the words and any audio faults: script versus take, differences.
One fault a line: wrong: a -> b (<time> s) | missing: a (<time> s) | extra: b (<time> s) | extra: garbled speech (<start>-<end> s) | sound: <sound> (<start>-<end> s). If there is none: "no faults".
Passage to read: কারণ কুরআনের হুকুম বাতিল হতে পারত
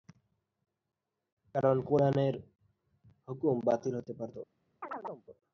sound: chirp (4.8-5.3 s)